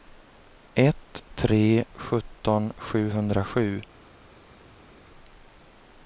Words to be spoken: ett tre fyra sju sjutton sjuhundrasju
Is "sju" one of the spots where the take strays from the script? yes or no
yes